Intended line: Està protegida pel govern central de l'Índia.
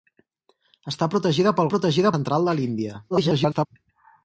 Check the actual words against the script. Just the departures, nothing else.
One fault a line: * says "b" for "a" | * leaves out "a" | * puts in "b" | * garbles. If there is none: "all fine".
* says "protegida" for "govern"
* garbles